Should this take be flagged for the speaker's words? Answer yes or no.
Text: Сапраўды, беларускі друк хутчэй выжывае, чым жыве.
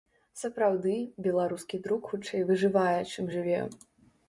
no